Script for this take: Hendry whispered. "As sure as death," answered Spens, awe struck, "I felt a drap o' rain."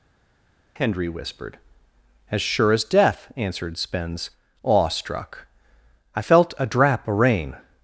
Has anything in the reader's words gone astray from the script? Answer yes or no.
no